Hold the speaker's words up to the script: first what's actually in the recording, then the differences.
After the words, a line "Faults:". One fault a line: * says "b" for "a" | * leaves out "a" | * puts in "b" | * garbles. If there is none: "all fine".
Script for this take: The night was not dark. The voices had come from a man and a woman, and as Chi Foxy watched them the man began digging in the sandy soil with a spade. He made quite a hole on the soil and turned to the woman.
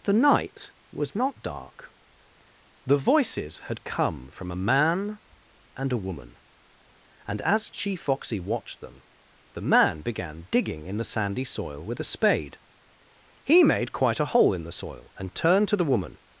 The night was not dark. The voices had come from a man and a woman, and as Chi Foxy watched them the man began digging in the sandy soil with a spade. He made quite a hole in the soil and turned to the woman.
Faults:
* says "in" for "on"